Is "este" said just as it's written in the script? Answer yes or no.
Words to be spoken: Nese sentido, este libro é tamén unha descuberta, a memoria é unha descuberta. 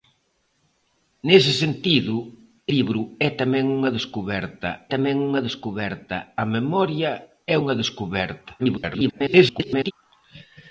no